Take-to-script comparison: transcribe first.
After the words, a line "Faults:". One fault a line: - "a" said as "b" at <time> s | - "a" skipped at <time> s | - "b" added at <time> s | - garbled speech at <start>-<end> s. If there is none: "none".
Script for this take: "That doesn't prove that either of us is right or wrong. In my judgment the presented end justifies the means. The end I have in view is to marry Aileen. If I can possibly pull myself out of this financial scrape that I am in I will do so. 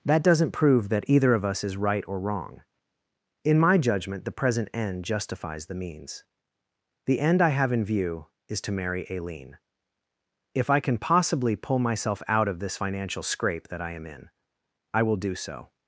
"That doesn't prove that either of us is right or wrong. In my judgment the present end justifies the means. The end I have in view is to marry Aileen. If I can possibly pull myself out of this financial scrape that I am in I will do so.
Faults:
- "presented" said as "present" at 4.3 s